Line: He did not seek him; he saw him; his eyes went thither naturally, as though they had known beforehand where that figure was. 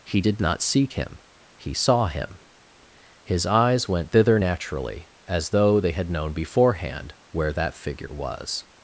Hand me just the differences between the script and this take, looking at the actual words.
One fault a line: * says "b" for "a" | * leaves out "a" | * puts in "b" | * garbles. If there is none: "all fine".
all fine